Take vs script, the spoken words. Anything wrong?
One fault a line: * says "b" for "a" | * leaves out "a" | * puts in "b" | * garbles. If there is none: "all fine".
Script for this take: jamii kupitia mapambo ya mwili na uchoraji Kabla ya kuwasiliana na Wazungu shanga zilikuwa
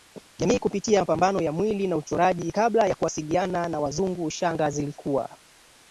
all fine